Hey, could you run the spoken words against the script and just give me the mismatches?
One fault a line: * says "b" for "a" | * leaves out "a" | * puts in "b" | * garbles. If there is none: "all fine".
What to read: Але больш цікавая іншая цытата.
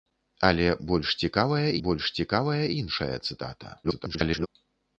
* puts in "больш цікавая"
* garbles